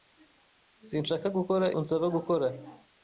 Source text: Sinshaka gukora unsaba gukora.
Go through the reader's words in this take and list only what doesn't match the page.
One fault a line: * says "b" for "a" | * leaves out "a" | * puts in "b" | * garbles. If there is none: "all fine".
all fine